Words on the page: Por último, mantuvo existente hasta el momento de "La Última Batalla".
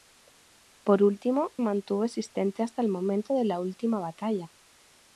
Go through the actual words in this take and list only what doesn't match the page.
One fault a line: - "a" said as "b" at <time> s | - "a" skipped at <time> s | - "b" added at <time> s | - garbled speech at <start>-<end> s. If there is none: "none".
none